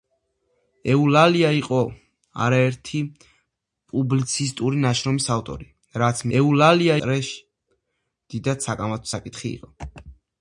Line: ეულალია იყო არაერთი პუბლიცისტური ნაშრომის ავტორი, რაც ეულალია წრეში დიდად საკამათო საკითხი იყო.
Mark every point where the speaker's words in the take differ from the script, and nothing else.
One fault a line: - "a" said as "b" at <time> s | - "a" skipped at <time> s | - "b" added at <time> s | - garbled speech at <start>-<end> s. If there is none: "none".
none